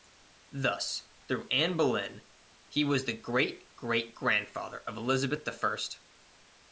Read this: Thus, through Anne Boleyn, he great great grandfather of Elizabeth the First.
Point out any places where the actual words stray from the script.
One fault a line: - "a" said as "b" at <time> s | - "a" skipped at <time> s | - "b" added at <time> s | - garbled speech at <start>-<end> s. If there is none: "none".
- "was the" added at 2.8 s